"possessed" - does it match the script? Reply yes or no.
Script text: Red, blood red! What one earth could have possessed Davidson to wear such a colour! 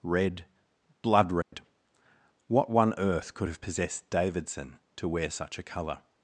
yes